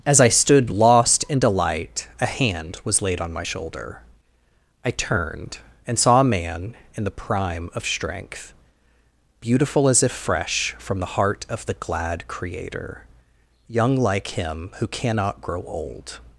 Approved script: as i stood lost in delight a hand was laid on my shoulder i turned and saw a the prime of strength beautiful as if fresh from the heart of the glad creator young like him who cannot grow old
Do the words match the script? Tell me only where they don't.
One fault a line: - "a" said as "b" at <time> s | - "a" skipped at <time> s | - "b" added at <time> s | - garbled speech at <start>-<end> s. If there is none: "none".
- "man in" added at 6.2 s